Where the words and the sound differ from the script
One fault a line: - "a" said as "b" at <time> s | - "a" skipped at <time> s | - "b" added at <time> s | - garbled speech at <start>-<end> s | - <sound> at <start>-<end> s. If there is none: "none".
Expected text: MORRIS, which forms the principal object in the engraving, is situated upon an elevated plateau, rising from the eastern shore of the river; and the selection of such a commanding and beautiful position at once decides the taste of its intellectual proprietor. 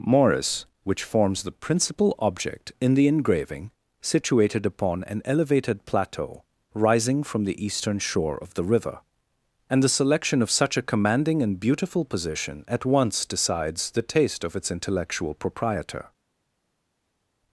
- "is" skipped at 3.7 s